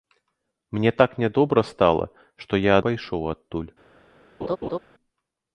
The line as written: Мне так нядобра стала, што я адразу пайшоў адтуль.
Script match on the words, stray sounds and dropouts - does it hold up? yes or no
no